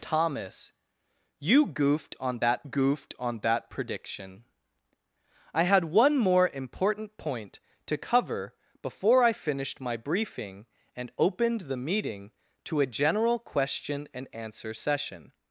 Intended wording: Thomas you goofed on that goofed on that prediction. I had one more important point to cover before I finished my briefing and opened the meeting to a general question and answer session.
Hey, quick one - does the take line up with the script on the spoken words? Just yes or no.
yes